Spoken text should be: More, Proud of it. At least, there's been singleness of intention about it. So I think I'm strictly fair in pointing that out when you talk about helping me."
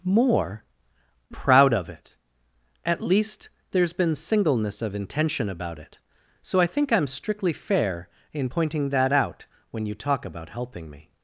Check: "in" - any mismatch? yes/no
no